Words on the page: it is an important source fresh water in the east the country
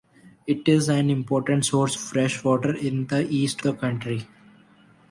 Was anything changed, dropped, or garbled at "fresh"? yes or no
no